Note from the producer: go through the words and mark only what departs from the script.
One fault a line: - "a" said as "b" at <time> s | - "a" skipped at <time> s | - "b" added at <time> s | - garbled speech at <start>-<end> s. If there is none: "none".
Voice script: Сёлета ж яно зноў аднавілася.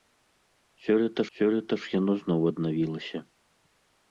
- "сёлета" added at 1.4 s